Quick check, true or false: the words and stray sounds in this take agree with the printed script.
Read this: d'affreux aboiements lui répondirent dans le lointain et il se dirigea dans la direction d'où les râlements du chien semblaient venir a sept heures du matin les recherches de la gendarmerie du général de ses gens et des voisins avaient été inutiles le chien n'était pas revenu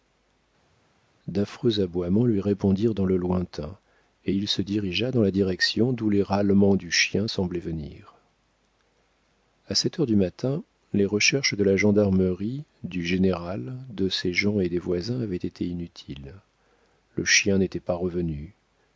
true